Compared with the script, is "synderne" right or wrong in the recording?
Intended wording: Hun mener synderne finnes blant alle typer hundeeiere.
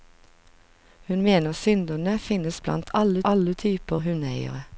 right